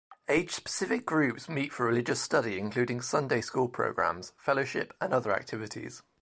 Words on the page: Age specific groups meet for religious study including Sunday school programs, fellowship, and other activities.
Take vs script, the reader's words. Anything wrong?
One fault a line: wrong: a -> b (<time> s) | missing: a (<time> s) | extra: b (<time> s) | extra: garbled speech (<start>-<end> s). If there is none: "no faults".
no faults